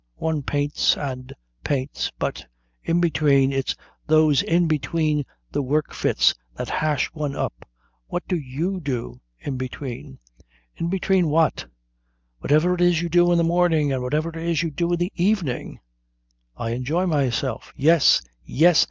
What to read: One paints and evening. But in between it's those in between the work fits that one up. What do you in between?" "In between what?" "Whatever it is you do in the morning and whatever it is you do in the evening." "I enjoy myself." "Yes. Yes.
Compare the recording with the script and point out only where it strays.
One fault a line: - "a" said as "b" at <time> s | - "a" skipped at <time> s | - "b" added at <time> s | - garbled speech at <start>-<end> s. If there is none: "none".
- "evening" said as "paints" at 1.6 s
- "hash" added at 6.7 s
- "do" added at 8.8 s